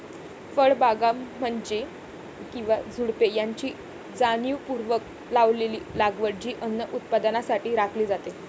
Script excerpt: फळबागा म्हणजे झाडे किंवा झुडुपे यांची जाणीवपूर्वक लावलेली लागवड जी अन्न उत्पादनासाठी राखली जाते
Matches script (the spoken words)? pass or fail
fail